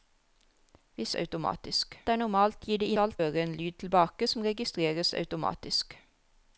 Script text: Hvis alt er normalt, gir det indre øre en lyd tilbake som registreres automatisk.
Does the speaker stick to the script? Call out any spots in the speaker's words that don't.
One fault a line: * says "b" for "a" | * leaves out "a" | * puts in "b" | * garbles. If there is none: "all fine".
* says "automatisk" for "alt"
* says "alt" for "indre"